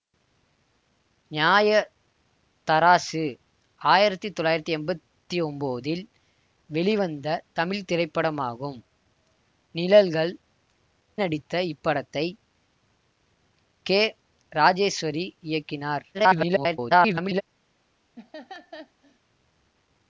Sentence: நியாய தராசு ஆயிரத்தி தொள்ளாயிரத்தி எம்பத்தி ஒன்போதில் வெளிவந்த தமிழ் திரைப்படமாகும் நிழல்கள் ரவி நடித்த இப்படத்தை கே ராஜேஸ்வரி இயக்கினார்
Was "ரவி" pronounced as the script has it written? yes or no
no